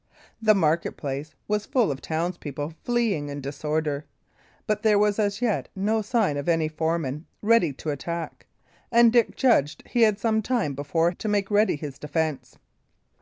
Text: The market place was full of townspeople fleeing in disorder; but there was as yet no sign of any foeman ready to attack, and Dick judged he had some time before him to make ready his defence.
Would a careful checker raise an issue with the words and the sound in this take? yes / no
yes